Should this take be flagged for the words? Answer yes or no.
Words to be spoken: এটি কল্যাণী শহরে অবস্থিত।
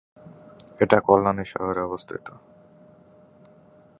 no